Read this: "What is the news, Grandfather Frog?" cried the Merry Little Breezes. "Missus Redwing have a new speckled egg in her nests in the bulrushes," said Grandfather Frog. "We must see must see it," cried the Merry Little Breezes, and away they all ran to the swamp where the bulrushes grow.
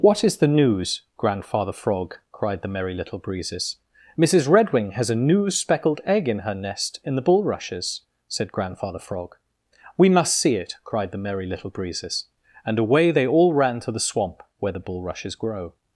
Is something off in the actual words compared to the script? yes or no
yes